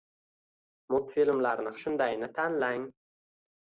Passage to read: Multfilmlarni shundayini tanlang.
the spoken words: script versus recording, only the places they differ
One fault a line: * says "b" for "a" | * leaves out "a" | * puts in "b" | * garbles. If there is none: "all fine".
all fine